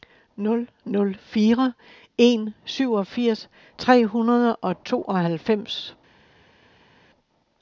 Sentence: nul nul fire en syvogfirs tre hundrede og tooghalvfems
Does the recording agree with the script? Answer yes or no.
yes